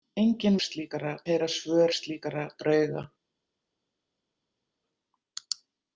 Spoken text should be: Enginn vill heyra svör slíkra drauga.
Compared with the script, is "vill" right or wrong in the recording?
wrong